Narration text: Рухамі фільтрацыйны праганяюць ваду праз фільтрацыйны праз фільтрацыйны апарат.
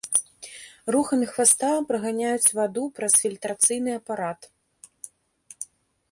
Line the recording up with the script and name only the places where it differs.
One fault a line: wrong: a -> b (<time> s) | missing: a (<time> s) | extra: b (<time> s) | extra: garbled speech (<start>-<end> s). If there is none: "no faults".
wrong: фільтрацыйны -> хваста (1.3 s)
missing: праз фільтрацыйны (3.9 s)